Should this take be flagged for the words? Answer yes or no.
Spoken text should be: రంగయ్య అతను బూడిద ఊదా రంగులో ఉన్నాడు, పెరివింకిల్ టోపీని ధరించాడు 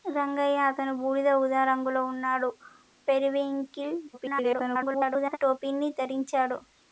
yes